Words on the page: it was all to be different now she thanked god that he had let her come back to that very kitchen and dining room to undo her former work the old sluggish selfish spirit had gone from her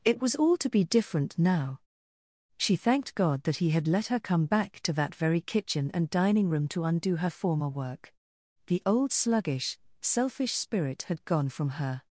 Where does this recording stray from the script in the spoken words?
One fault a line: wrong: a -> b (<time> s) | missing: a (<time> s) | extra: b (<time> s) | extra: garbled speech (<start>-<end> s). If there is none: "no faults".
no faults